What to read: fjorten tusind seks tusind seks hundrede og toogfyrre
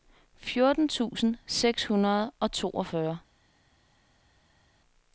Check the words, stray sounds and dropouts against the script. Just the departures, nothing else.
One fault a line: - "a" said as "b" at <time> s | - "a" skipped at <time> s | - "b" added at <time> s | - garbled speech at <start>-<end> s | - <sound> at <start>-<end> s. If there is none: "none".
- "tusind seks" skipped at 1.9 s